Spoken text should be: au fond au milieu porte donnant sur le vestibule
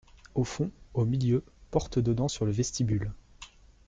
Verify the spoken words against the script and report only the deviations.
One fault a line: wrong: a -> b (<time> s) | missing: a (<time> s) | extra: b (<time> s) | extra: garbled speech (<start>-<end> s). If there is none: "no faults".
no faults